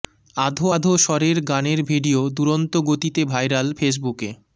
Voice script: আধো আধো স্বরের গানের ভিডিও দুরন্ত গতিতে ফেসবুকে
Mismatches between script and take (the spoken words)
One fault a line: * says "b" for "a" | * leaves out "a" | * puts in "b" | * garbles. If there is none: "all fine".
* puts in "ভাইরাল"